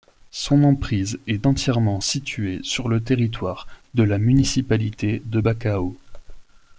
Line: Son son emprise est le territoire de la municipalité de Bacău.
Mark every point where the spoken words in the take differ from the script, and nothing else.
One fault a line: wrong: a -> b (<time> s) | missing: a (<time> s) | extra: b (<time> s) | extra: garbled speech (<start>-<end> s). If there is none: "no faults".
missing: son (0.6 s)
extra: entièrement située sur (1.5 s)